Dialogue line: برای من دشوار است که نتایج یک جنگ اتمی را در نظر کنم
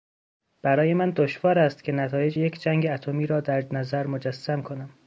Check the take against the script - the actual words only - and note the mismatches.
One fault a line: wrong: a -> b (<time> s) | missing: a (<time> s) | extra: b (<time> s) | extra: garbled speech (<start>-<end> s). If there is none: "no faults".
extra: مجسم (4.1 s)